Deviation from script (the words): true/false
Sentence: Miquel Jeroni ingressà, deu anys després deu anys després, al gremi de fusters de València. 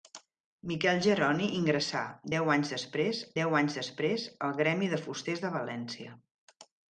false